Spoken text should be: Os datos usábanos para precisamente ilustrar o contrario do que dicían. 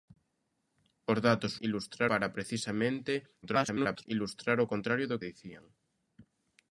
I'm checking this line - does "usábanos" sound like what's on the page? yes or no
no